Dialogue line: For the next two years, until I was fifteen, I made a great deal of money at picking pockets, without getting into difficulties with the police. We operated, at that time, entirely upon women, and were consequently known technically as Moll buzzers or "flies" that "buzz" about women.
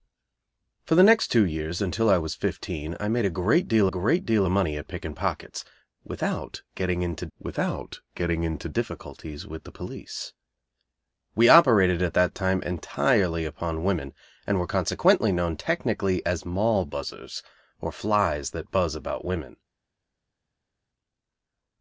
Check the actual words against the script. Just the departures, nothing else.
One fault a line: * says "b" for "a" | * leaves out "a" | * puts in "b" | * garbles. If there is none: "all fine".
* puts in "great deal"
* puts in "without getting into"